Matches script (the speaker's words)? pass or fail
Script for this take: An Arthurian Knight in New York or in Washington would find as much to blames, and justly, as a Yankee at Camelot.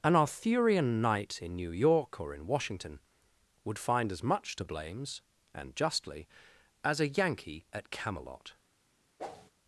pass